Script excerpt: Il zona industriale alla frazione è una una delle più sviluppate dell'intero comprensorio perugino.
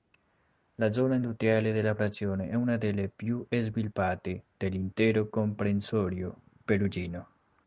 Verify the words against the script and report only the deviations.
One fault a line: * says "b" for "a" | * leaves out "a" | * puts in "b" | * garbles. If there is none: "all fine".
* says "La" for "Il"
* says "della" for "alla"
* leaves out "una"